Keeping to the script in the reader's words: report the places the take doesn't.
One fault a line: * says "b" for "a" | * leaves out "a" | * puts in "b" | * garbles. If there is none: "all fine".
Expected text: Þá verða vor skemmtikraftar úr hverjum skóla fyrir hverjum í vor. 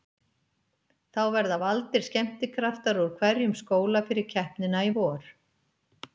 * says "valdir" for "vor"
* says "keppnina" for "hverjum"